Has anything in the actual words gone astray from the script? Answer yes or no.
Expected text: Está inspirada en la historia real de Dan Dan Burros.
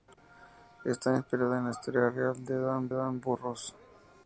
no